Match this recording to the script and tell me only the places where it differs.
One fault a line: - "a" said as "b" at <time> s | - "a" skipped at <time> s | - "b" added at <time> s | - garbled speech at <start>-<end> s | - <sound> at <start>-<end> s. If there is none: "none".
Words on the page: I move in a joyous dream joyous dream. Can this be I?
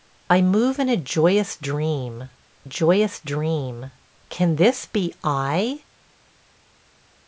none